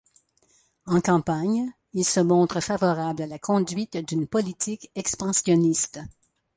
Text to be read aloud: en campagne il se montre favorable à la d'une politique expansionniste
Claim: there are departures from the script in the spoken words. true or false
true